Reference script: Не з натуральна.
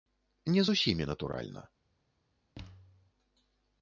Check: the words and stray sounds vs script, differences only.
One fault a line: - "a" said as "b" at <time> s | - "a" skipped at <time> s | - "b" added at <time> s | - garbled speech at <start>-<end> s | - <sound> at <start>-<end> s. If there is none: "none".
- "усімі" added at 0.7 s
- thud at 2.5-3.1 s